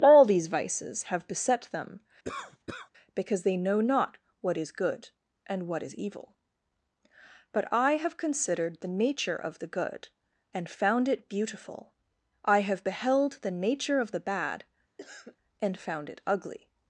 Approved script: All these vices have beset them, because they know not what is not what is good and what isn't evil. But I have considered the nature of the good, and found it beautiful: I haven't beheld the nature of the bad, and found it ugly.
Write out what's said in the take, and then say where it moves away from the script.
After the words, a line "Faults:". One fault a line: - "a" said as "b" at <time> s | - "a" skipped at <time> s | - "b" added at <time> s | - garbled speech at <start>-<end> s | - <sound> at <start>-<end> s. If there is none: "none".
All these vices have beset them, because they know not what is good and what is evil. But I have considered the nature of the good, and found it beautiful: I have beheld the nature of the bad, and found it ugly.
Faults:
- cough at 2.2-2.9 s
- "not what is" skipped at 4.7 s
- "isn't" said as "is" at 5.8 s
- "haven't" said as "have" at 12.6 s
- cough at 15.0-15.4 s